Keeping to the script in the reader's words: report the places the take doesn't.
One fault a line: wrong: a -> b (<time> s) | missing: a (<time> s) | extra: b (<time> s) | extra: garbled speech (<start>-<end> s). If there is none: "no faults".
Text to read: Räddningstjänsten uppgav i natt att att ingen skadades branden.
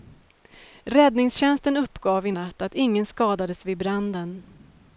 missing: att (2.7 s)
extra: vid (3.6 s)